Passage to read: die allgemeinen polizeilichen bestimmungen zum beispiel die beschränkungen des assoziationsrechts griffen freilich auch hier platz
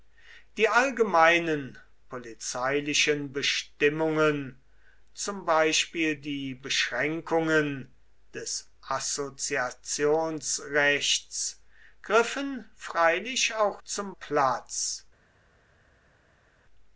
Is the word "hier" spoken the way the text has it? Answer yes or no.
no